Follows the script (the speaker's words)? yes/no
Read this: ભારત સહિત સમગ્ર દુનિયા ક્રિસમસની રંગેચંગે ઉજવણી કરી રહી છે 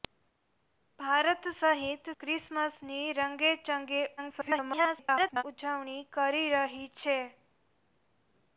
no